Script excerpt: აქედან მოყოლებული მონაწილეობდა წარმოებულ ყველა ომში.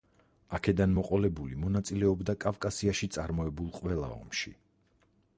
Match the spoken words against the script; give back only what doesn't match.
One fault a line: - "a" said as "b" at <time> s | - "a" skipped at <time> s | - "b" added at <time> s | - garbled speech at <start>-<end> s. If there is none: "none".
- "კავკასიაში" added at 2.4 s